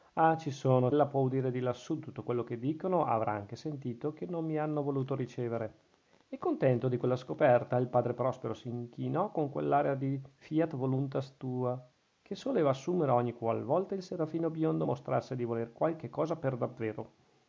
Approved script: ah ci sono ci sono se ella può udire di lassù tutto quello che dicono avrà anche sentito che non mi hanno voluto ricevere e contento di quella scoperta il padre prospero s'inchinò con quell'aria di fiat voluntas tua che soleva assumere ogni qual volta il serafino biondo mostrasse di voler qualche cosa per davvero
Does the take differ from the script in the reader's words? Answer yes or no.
yes